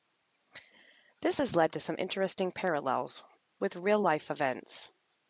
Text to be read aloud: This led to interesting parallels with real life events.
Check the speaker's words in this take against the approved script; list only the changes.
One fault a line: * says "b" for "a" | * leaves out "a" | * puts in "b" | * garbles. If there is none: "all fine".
* puts in "has"
* puts in "some"